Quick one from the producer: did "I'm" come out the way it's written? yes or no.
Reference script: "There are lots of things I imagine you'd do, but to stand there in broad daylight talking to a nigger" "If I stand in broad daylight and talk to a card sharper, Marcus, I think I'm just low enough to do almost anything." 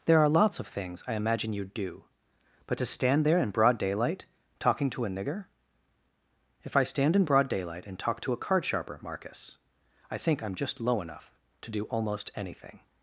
yes